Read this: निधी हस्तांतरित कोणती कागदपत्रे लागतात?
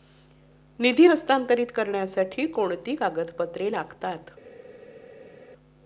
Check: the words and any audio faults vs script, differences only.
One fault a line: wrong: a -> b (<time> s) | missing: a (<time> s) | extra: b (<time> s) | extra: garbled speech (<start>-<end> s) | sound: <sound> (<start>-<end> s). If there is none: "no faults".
extra: करण्यासाठी (1.8 s)